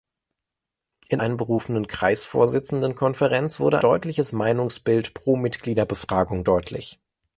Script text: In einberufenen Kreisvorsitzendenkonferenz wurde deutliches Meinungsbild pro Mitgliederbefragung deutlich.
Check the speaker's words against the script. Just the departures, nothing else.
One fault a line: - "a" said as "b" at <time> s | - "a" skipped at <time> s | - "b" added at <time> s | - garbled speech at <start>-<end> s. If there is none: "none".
none